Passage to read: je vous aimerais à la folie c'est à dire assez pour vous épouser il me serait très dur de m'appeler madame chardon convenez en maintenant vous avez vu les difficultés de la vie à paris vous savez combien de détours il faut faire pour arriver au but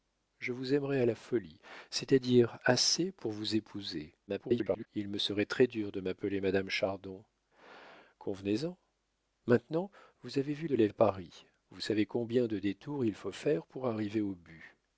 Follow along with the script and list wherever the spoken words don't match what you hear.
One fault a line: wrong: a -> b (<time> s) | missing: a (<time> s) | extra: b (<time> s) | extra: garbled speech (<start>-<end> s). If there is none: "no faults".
extra: garbled speech (4.3-4.9 s)
missing: les difficultés (10.7 s)
missing: vie (10.9 s)